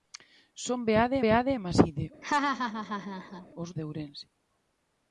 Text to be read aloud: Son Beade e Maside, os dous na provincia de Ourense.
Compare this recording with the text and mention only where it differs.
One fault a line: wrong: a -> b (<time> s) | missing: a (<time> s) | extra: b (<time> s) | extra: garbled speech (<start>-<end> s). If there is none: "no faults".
extra: Beade (1.2 s)
missing: dous na provincia (3.7 s)